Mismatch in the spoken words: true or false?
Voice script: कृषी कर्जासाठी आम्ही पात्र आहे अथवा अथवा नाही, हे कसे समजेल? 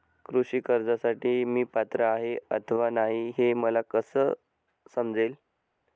true